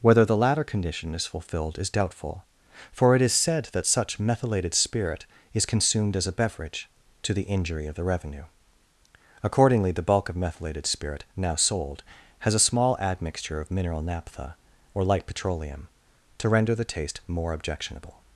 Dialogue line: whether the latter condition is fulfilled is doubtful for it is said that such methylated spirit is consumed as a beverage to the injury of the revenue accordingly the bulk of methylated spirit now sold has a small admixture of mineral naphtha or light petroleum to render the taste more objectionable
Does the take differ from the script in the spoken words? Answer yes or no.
no